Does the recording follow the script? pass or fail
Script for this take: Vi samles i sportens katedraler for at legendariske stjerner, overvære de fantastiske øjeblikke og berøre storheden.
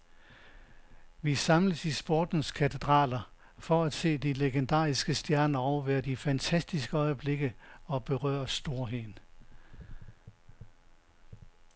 fail